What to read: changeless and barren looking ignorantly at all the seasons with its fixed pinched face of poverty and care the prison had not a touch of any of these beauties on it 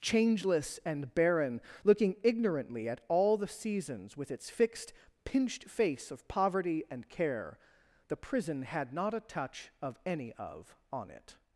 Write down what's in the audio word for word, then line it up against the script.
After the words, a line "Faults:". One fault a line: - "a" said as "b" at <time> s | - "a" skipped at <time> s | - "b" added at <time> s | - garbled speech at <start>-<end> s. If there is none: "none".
changeless and barren looking ignorantly at all the seasons with its fixed pinched face of poverty and care the prison had not a touch of any of on it
Faults:
- "these beauties" skipped at 10.8 s